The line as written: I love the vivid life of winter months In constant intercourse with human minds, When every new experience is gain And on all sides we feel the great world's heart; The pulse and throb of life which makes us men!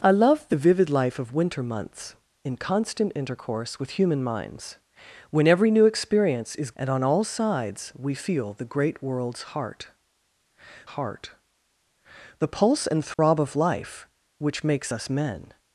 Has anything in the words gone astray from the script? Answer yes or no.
yes